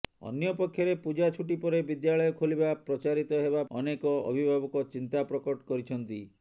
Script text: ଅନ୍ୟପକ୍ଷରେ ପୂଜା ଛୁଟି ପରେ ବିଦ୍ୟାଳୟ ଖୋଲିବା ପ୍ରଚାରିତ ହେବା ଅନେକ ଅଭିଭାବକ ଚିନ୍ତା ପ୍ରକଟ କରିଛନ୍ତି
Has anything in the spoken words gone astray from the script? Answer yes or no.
no